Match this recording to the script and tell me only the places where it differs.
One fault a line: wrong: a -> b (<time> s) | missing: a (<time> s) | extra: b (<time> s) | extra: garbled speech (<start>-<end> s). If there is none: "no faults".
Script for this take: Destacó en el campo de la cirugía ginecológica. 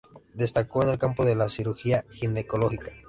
no faults